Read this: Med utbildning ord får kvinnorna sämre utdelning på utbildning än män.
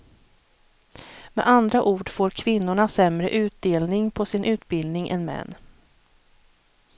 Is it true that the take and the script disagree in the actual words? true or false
true